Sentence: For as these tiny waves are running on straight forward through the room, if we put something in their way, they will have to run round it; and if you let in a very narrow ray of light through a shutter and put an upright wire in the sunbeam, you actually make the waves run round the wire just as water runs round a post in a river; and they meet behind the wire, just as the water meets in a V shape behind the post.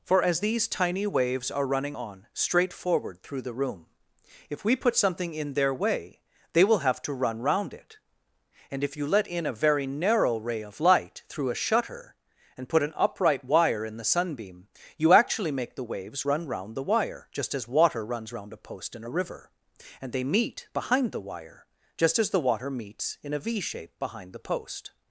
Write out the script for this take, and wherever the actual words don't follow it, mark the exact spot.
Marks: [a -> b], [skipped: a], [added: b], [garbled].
For as these tiny waves are running on straight forward through the room, if we put something in their way, they will have to run round it; and if you let in a very narrow ray of light through a shutter and put an upright wire in the sunbeam, you actually make the waves run round the wire just as water runs round a post in a river; and they meet behind the wire, just as the water meets in a V shape behind the post.